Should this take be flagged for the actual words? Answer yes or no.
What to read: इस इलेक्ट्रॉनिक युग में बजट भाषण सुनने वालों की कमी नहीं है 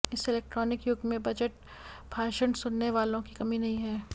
no